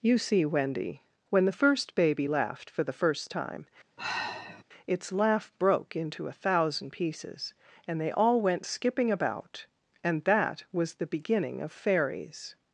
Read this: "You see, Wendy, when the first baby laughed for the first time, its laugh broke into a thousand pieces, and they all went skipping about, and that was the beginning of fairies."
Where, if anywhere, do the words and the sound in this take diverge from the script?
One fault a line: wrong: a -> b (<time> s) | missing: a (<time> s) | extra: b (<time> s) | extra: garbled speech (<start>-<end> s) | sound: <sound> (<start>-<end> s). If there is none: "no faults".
sound: sigh (4.0-4.6 s)